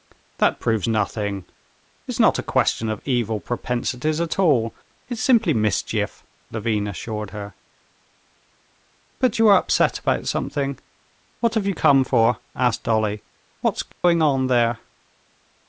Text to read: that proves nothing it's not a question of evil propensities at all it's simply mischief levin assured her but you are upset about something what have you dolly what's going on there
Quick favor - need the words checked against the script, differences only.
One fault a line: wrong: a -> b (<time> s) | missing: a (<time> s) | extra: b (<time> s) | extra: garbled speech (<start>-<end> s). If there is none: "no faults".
extra: come for asked (11.7 s)